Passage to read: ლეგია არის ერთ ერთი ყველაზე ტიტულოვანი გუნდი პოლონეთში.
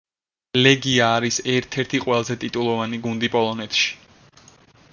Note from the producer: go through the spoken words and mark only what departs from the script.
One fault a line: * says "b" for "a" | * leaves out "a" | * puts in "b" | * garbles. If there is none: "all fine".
all fine